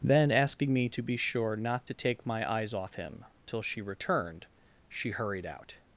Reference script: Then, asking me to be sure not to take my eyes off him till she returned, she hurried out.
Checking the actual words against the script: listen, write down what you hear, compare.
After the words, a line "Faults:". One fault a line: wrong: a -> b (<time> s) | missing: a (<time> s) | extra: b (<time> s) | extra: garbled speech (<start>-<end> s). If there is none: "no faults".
Then, asking me to be sure not to take my eyes off him till she returned, she hurried out.
Faults:
no faults